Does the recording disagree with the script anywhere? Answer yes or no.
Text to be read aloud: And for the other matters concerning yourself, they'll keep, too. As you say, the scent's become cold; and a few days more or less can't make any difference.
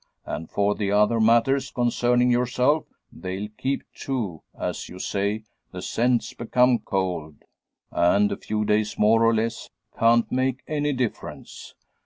no